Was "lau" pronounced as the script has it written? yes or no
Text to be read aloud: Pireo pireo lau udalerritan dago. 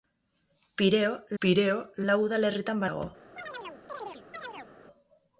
yes